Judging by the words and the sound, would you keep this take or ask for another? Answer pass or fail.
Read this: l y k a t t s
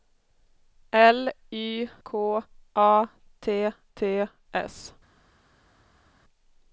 pass